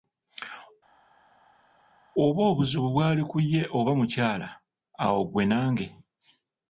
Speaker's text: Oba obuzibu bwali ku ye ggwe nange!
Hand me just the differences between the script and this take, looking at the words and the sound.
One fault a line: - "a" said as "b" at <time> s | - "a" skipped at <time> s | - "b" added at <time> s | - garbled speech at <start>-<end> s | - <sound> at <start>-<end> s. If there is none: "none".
- "oba mukyala awo" added at 3.8 s